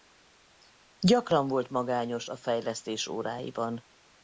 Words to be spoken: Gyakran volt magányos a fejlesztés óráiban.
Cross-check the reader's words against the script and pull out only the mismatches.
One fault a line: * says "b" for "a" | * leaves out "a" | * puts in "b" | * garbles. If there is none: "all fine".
all fine